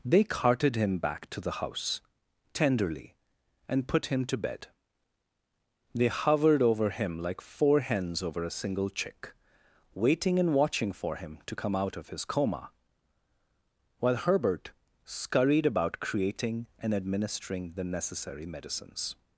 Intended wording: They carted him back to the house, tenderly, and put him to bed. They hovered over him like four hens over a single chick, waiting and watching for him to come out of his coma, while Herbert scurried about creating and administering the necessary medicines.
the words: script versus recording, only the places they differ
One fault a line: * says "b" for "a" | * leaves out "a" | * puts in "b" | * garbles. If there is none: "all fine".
all fine